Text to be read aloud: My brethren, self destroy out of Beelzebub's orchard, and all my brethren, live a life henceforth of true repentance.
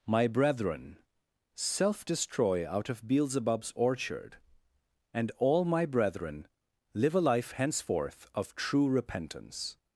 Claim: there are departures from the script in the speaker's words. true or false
false